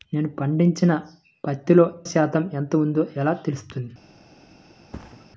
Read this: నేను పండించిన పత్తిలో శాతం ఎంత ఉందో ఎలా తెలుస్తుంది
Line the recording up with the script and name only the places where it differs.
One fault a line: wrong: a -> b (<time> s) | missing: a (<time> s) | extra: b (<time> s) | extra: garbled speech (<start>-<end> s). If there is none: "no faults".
no faults